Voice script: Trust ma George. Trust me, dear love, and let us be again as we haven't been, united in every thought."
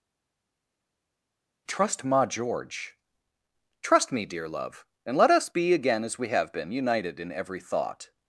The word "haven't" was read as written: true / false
false